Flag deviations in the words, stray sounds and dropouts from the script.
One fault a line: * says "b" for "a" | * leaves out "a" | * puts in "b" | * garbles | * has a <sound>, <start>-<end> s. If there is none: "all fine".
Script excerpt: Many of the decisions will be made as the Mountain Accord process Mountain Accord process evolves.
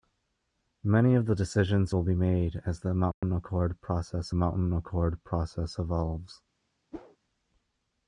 * has a dropout, 3.1-3.2 s
* has a whoosh, 6.9-7.2 s